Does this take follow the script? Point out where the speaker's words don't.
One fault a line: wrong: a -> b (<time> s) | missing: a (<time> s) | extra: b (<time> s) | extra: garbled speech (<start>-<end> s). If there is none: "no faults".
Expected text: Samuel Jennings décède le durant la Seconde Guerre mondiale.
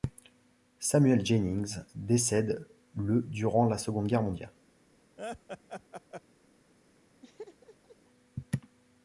no faults